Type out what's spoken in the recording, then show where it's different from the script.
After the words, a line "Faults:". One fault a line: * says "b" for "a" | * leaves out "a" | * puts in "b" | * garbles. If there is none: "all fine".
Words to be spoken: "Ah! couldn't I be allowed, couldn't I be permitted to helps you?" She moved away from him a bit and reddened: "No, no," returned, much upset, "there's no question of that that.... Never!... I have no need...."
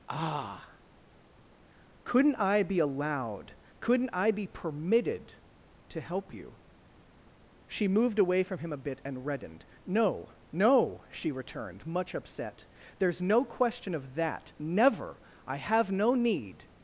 "Ah! couldn't I be allowed, couldn't I be permitted to help you?" She moved away from him a bit and reddened: "No, no," she returned, much upset, "there's no question of that.... Never!... I have no need...."
Faults:
* says "help" for "helps"
* puts in "she"
* leaves out "that"